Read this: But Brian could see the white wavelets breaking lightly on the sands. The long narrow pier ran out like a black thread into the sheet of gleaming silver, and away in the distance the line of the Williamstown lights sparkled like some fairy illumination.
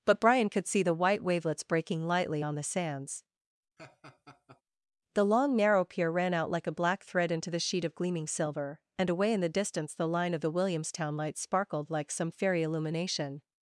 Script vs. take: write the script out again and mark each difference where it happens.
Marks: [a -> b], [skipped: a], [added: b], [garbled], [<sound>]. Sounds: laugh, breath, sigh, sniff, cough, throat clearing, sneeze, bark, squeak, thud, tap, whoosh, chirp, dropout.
But Brian could see the white wavelets breaking lightly on the sands. [laugh] The long narrow pier ran out like a black thread into the sheet of gleaming silver, and away in the distance the line of the Williamstown lights sparkled like some fairy illumination.